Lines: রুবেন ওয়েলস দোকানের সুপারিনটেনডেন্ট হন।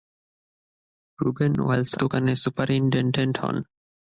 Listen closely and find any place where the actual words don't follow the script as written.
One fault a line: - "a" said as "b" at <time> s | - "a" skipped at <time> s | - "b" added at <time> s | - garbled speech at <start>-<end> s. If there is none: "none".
none